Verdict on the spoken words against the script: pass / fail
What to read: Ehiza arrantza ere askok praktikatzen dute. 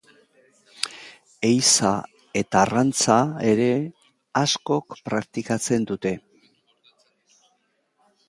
fail